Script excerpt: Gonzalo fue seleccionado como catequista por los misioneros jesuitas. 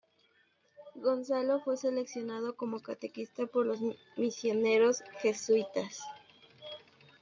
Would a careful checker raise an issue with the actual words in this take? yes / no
no